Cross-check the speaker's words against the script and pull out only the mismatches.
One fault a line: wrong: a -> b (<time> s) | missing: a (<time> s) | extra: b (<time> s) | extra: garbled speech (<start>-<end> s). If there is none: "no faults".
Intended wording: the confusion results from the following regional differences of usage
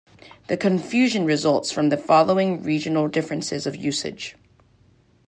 no faults